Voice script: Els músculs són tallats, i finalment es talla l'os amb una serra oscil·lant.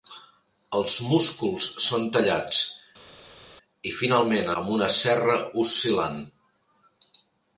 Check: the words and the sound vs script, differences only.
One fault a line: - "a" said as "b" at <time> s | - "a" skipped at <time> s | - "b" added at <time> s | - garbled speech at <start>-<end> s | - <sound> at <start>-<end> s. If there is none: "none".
- "es talla l'os" skipped at 4.5 s